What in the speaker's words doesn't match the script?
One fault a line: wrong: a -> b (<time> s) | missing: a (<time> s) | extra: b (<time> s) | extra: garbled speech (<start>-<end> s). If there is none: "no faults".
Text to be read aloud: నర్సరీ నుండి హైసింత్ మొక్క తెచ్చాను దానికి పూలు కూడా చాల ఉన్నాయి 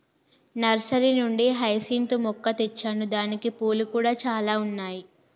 no faults